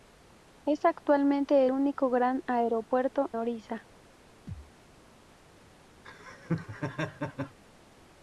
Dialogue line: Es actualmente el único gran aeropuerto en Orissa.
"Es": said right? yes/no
yes